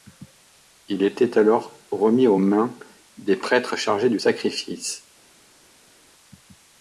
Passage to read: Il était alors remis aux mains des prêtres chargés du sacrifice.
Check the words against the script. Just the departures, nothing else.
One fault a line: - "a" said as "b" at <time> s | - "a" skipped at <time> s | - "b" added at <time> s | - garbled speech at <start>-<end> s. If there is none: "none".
none